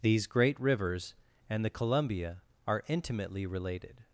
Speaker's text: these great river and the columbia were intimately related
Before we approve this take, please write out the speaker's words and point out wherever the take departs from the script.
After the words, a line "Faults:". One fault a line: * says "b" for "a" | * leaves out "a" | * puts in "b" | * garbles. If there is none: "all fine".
these great rivers and the columbia are intimately related
Faults:
* says "rivers" for "river"
* says "are" for "were"